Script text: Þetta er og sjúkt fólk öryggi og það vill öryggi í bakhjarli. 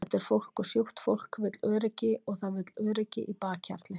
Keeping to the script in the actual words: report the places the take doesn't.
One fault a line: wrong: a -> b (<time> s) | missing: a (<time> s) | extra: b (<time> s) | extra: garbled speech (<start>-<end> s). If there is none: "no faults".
extra: fólk (0.2 s)
extra: vill (1.4 s)